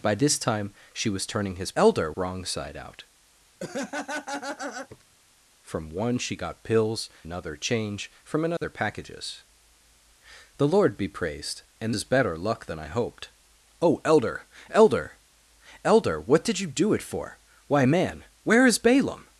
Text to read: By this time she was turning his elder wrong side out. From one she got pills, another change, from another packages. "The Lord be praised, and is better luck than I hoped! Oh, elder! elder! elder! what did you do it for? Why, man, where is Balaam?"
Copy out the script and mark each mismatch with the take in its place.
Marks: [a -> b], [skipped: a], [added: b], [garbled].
By this time she was turning his elder wrong side out. From one she got pills, another change, from another packages. "The Lord be praised, and is better luck than I hoped! Oh, elder! elder! elder! what did you do it for? Why, man, where is Balaam?"